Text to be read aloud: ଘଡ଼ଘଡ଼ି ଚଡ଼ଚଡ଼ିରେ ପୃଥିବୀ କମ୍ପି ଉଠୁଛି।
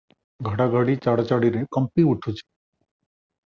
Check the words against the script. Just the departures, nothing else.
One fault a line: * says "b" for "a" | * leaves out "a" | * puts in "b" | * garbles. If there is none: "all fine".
* leaves out "ପୃଥିବୀ"